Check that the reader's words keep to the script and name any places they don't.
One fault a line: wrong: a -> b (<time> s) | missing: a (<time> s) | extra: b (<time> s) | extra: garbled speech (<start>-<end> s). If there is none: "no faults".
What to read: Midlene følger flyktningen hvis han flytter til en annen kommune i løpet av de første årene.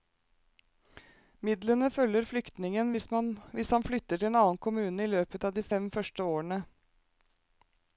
extra: fem (5.7 s)